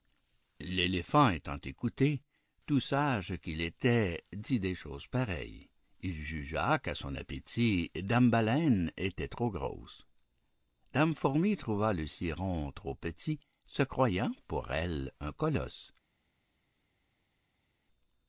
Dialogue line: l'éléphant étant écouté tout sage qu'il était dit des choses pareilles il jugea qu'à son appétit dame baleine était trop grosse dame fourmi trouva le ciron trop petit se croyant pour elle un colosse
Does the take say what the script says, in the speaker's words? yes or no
yes